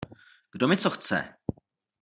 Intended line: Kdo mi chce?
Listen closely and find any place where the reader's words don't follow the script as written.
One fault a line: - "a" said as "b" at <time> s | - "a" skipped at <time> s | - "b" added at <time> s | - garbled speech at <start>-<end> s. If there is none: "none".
- "co" added at 0.8 s